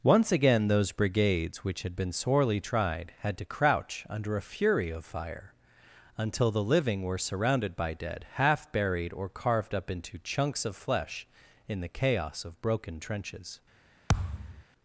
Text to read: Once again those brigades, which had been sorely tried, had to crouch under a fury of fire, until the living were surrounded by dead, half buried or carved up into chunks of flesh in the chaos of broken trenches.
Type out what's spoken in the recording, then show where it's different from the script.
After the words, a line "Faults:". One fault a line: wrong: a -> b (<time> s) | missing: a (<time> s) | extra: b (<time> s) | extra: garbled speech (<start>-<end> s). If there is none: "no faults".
Once again those brigades, which had been sorely tried, had to crouch under a fury of fire, until the living were surrounded by dead, half buried or carved up into chunks of flesh in the chaos of broken trenches.
Faults:
no faults